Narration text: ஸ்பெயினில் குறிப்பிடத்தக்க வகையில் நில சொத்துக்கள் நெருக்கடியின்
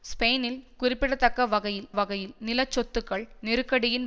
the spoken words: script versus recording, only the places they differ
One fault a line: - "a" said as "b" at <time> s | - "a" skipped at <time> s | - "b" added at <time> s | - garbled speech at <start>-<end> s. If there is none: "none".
- "வகையில்" added at 1.9 s